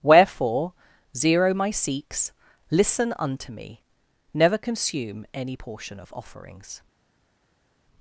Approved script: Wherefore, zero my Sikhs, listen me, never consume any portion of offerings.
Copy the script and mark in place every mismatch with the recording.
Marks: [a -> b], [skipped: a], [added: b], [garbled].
Wherefore, zero my Sikhs, listen [added: unto] me, never consume any portion of offerings.